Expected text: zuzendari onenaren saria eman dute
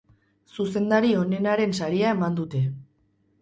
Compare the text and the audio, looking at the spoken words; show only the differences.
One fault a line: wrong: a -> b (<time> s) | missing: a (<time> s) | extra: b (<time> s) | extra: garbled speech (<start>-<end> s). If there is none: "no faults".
no faults